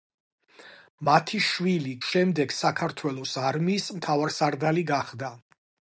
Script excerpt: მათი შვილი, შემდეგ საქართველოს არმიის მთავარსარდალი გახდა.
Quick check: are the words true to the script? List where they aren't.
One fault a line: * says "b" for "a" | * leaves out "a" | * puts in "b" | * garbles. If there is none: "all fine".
all fine